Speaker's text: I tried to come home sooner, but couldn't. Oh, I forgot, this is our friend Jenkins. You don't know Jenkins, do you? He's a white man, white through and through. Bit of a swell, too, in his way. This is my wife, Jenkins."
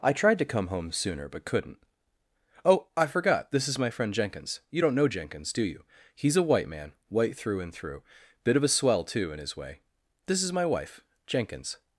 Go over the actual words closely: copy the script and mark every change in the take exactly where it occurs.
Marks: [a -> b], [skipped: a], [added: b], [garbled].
I tried to come home sooner, but couldn't. Oh, I forgot, this is [our -> my] friend Jenkins. You don't know Jenkins, do you? He's a white man, white through and through. Bit of a swell, too, in his way. This is my wife, Jenkins."